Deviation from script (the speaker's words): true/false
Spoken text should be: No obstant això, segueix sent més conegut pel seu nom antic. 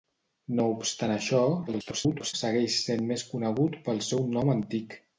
true